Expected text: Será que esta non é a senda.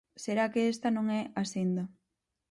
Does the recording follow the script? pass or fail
pass